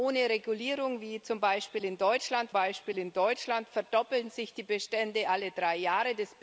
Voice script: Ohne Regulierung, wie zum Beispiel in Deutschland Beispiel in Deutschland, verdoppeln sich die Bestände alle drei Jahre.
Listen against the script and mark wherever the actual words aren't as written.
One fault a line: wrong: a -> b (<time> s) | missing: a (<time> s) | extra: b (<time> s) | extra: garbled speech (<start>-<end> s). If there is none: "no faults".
no faults